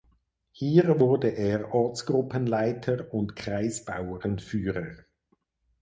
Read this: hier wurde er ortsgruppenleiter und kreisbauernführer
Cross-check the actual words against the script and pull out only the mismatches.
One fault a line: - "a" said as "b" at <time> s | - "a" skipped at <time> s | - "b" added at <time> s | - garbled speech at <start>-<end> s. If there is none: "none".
none